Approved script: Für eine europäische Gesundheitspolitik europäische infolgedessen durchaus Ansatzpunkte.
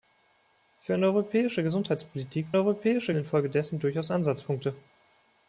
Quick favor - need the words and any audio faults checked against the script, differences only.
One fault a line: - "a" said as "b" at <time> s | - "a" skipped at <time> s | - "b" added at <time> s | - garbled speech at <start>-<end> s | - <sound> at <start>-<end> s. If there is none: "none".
none